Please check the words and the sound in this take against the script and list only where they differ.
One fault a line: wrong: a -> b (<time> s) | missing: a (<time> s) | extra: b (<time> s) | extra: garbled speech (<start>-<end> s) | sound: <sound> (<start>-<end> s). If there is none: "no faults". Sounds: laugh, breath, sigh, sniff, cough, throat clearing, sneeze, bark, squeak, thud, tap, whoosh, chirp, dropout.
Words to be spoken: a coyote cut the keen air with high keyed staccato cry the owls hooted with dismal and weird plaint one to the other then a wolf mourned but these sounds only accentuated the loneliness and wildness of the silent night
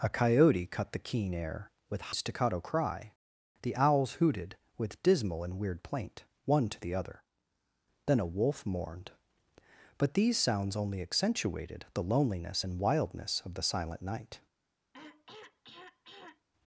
missing: high keyed (2.1 s)
sound: throat clearing (14.9-16.5 s)